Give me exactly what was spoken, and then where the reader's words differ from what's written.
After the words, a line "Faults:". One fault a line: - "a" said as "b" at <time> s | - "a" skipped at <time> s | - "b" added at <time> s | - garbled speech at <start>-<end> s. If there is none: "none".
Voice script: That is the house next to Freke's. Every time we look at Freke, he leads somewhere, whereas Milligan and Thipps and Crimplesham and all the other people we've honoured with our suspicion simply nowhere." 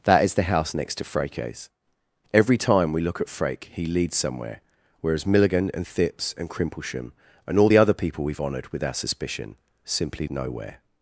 That is the house next to Freke's. Every time we look at Freke, he leads somewhere, whereas Milligan and Thipps and Crimplesham and all the other people we've honoured with our suspicion simply nowhere."
Faults:
none